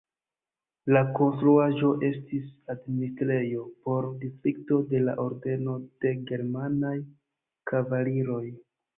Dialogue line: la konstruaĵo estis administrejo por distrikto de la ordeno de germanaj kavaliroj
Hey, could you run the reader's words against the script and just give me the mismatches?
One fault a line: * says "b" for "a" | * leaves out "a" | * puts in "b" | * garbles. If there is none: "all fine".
all fine